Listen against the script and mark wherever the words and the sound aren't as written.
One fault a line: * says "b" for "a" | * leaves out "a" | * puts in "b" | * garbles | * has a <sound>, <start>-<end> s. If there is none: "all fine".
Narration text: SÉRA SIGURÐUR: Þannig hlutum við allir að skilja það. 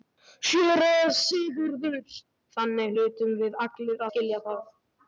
* leaves out "að"